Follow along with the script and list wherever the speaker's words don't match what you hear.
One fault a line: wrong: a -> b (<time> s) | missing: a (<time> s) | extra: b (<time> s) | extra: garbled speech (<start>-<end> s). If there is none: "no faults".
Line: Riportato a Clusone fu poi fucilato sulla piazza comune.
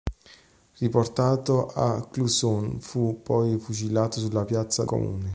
no faults